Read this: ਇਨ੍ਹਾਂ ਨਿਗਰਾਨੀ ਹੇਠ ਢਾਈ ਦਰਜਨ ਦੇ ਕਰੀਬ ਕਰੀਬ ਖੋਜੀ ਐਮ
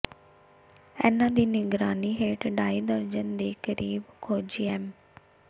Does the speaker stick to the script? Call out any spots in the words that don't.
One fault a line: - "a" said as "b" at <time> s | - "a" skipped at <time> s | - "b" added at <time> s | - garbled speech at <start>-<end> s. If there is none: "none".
- "ਦੀ" added at 1.3 s
- "ਕਰੀਬ" skipped at 4.0 s